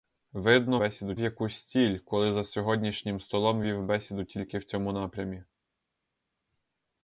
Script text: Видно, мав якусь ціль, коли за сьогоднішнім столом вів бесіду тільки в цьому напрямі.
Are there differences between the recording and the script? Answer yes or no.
yes